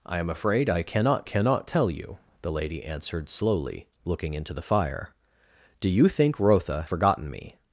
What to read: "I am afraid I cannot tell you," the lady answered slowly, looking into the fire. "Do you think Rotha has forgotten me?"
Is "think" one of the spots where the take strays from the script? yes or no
no